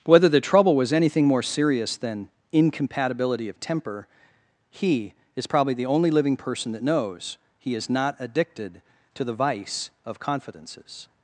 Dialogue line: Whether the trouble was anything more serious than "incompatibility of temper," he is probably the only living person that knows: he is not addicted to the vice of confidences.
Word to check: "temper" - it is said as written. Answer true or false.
true